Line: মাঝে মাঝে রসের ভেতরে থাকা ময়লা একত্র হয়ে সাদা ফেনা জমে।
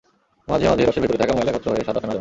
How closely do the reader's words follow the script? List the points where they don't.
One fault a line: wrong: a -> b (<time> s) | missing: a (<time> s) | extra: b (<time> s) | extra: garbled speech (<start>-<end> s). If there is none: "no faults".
no faults